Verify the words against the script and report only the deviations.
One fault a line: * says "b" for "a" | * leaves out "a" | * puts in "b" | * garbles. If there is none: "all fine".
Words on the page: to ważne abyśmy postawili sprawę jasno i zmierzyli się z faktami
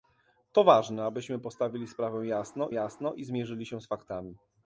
* puts in "jasno"